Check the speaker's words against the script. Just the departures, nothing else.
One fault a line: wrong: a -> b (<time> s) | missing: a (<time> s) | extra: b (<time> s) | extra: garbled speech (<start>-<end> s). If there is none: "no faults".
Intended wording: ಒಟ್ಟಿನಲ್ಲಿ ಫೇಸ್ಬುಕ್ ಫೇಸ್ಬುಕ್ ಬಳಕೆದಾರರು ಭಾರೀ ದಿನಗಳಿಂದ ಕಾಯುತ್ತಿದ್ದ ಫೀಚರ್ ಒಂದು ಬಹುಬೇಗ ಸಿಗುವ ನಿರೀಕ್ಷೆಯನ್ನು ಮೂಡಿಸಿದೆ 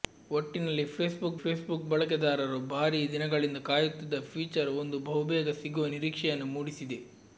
no faults